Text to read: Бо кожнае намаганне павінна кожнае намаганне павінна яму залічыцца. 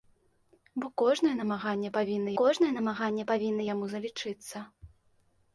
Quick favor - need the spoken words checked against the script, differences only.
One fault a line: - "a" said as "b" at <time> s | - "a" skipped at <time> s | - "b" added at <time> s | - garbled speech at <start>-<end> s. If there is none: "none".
none